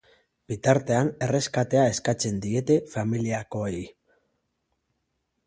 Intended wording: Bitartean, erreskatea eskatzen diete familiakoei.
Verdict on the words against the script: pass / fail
pass